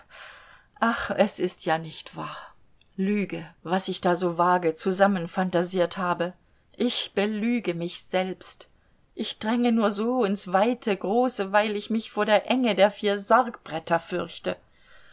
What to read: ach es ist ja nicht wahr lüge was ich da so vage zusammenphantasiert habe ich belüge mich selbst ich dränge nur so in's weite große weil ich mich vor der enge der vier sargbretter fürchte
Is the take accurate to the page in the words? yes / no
yes